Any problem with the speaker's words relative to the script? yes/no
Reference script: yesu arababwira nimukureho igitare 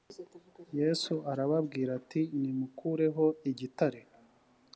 yes